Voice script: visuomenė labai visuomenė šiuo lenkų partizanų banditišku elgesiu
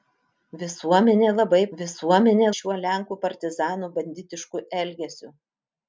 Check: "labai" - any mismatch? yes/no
no